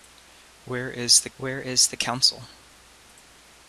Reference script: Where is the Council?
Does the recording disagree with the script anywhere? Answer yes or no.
yes